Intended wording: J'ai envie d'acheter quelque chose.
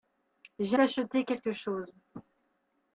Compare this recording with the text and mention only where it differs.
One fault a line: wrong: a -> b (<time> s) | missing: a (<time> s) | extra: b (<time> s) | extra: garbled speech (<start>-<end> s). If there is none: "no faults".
missing: envie (0.8 s)